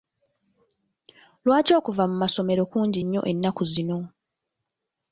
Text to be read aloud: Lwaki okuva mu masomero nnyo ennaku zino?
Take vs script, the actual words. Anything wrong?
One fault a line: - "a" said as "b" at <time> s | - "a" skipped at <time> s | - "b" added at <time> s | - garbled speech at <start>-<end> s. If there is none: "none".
- "kungi" added at 2.7 s